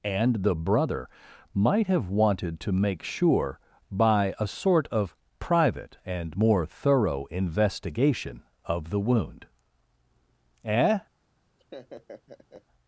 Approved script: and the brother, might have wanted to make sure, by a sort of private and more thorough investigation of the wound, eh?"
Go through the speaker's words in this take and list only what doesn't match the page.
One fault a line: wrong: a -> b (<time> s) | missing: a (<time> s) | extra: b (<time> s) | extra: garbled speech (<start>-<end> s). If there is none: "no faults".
no faults